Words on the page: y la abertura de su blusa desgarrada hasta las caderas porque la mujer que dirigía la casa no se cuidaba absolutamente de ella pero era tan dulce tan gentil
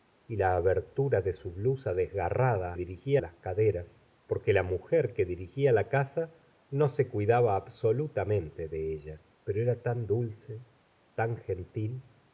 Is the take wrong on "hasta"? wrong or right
wrong